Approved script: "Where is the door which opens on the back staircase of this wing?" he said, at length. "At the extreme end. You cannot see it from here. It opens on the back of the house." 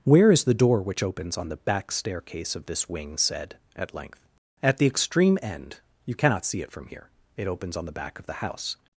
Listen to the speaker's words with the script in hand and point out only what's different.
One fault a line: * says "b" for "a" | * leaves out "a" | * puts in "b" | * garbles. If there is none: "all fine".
* leaves out "he"